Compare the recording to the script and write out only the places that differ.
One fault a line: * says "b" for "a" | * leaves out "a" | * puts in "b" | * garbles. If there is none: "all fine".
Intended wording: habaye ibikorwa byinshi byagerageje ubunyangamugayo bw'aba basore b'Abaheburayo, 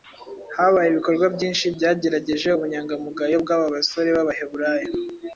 all fine